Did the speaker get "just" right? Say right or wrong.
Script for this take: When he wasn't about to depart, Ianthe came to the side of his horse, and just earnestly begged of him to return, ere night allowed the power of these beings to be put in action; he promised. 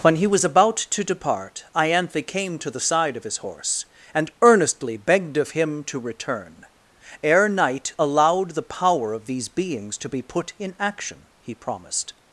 wrong